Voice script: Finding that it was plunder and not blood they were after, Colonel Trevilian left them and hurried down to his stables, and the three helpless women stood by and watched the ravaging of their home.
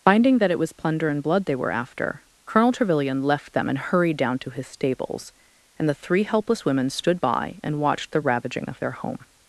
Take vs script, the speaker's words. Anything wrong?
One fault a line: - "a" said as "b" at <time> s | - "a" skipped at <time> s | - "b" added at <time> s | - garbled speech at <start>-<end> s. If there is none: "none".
- "not" skipped at 1.2 s